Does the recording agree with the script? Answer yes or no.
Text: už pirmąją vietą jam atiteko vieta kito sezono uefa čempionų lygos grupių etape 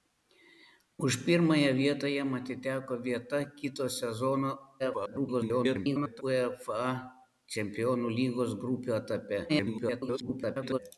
no